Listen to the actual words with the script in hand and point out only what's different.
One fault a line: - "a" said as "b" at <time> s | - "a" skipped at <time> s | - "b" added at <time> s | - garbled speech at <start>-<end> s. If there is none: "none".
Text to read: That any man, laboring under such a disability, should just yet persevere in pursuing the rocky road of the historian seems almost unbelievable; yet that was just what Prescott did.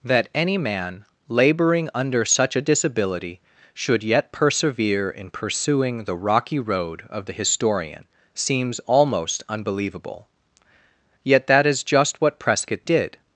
- "just" skipped at 4.0 s
- "was" said as "is" at 11.7 s